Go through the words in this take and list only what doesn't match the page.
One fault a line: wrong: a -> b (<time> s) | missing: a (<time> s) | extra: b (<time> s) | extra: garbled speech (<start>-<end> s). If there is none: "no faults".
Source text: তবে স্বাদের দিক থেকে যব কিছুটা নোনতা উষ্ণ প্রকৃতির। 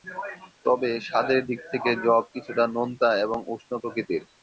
extra: এবং (3.2 s)